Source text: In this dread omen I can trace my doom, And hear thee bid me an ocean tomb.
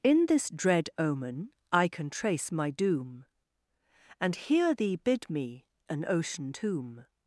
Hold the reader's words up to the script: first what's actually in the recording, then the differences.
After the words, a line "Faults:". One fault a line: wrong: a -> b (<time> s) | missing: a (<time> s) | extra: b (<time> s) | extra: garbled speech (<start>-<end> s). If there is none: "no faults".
In this dread omen I can trace my doom, And hear thee bid me an ocean tomb.
Faults:
no faults